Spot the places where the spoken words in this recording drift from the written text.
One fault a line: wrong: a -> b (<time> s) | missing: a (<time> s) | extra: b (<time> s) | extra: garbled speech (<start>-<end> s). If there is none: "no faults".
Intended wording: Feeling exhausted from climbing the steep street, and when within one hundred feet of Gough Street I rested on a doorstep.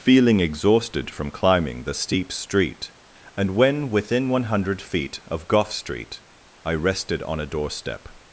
no faults